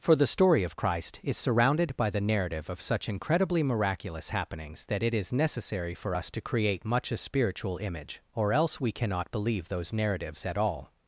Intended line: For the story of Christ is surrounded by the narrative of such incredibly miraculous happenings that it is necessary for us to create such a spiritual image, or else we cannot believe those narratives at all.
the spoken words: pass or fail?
fail